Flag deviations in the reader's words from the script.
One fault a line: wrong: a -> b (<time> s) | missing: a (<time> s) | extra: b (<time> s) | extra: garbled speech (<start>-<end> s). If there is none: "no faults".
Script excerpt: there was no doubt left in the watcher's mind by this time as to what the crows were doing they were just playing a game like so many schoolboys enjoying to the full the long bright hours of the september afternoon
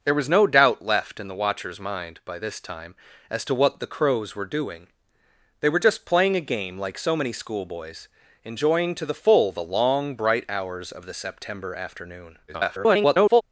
extra: garbled speech (12.5-13.4 s)